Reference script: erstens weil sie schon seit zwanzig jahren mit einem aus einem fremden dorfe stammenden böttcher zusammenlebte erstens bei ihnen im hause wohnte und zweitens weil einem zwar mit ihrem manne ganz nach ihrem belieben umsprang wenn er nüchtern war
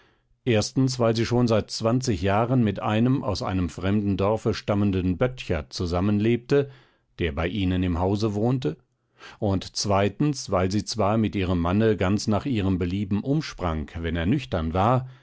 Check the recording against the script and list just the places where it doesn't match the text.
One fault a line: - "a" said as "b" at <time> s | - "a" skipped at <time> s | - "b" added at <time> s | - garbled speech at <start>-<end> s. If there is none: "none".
- "erstens" said as "der" at 7.2 s
- "einem" said as "sie" at 10.7 s